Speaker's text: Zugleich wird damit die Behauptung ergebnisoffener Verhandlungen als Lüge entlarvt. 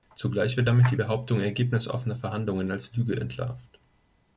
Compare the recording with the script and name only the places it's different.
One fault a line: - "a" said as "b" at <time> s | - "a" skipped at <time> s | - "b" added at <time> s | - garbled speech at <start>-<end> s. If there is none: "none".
none